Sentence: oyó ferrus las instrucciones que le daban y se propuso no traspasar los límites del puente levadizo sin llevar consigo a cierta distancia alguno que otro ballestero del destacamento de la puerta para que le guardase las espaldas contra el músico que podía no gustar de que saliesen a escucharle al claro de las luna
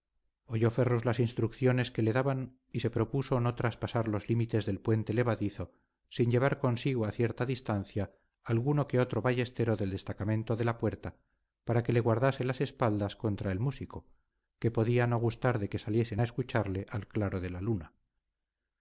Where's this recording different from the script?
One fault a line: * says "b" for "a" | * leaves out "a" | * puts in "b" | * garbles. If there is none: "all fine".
* says "la" for "las"